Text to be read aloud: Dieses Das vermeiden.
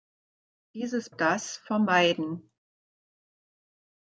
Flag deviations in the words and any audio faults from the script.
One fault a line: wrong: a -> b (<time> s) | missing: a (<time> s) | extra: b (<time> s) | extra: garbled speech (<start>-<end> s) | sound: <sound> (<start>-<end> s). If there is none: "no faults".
no faults